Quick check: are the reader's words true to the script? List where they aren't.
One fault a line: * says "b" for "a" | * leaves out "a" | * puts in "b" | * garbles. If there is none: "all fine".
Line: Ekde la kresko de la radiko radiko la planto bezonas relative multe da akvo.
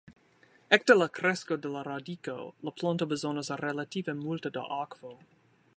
* leaves out "radiko"